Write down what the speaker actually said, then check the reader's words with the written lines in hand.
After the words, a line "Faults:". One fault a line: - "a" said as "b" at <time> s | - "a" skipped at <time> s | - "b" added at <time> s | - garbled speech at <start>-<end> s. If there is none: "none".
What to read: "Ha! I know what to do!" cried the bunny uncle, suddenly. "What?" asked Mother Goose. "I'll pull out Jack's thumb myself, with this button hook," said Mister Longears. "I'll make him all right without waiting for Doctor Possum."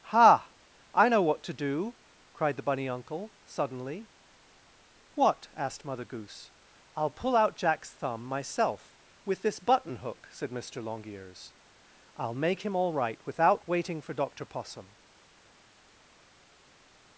"Ha! I know what to do!" cried the bunny uncle, suddenly. "What?" asked Mother Goose. "I'll pull out Jack's thumb myself, with this button hook," said Mister Longears. "I'll make him all right without waiting for Doctor Possum."
Faults:
none